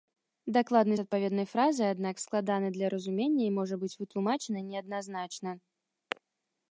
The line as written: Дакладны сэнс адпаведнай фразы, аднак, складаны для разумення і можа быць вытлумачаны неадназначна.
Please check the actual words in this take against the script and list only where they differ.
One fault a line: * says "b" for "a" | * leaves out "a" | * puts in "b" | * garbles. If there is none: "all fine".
* leaves out "сэнс"